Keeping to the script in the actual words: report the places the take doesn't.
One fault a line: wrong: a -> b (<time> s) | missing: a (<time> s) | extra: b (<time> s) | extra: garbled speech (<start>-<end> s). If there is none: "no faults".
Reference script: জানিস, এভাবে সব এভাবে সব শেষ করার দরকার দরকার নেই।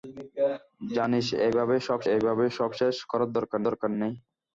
no faults